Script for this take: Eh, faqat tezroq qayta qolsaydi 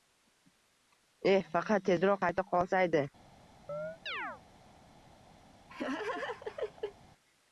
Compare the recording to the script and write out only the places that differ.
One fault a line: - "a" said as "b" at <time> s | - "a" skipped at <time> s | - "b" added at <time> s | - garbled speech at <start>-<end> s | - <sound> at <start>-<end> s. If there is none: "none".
- chirp at 3.7-4.4 s
- laugh at 5.7-7.0 s